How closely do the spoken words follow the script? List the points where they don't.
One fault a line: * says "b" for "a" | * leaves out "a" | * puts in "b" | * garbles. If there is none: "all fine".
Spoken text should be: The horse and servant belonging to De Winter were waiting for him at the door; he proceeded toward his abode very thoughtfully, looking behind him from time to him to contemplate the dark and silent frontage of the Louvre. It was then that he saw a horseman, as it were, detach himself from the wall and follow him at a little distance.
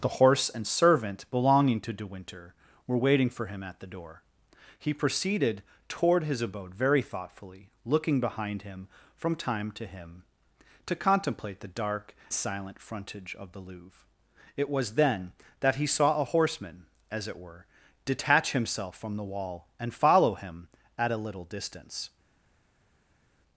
* leaves out "and"